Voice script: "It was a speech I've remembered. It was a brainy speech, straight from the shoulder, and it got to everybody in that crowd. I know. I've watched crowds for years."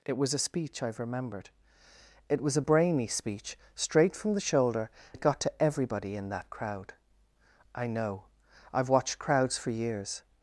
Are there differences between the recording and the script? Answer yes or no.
yes